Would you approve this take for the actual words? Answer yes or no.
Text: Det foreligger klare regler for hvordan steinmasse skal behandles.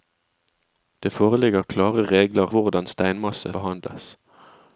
no